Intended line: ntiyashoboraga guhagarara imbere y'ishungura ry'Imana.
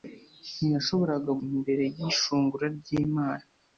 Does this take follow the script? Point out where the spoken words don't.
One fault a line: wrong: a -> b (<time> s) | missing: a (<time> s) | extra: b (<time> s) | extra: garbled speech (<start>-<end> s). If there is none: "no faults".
missing: guhagarara (1.3 s)